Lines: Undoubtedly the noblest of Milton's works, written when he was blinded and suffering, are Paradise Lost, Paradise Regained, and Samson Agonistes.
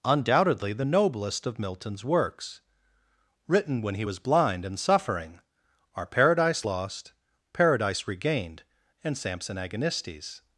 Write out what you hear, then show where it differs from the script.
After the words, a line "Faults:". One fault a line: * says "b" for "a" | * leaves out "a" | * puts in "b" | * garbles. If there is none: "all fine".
Undoubtedly the noblest of Milton's works, written when he was blind and suffering, are Paradise Lost, Paradise Regained, and Samson Agonistes.
Faults:
* says "blind" for "blinded"